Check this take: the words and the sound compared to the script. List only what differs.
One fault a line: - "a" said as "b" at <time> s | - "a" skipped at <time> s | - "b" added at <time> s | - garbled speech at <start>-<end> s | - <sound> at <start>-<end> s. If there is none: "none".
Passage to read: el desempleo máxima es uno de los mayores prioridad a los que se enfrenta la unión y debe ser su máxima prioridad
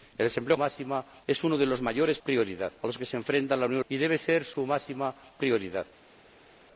none